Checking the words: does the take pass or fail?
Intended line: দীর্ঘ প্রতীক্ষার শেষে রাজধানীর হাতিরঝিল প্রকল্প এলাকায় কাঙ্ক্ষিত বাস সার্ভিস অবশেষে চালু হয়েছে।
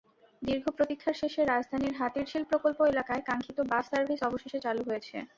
pass